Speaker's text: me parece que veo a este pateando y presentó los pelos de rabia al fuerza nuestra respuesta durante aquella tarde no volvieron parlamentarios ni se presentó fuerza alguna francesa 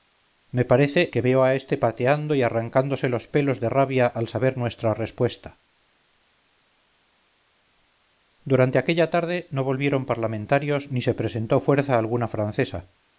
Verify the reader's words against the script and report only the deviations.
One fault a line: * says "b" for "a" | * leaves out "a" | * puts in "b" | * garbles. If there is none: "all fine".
* says "arrancándose" for "presentó"
* says "saber" for "fuerza"